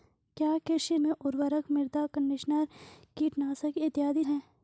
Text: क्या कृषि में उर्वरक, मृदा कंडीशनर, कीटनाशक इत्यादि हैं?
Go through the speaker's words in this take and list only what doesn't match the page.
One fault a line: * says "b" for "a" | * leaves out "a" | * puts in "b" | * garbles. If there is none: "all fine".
all fine